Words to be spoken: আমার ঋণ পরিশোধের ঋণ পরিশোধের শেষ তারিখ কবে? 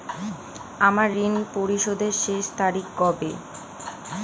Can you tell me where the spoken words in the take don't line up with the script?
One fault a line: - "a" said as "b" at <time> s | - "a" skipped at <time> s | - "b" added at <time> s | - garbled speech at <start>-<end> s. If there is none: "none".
- "ঋণ পরিশোধের" skipped at 2.1 s